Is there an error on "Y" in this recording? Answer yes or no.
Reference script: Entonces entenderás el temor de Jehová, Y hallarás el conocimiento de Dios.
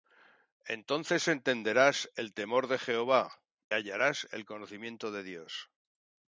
yes